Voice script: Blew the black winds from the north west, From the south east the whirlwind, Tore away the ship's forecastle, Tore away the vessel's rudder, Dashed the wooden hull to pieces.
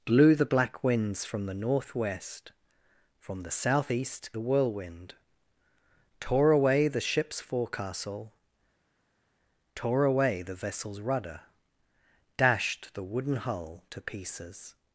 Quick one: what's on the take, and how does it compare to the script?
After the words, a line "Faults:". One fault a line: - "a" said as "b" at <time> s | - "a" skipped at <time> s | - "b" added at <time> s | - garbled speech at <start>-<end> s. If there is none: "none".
Blew the black winds from the north west, From the south east the whirlwind, Tore away the ship's forecastle, Tore away the vessel's rudder, Dashed the wooden hull to pieces.
Faults:
none